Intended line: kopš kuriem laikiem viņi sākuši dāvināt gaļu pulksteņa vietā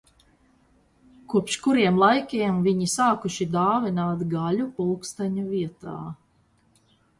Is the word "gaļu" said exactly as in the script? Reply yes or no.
yes